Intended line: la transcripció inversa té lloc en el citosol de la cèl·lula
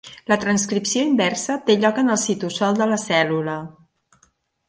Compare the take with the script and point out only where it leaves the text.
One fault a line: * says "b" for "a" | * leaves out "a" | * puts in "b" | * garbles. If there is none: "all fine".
all fine